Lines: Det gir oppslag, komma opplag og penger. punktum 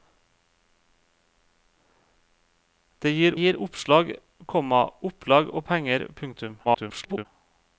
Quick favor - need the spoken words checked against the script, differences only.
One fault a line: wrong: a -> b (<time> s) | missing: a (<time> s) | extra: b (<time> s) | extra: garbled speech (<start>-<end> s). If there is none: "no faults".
extra: gir (3.3 s)
extra: garbled speech (6.6-7.3 s)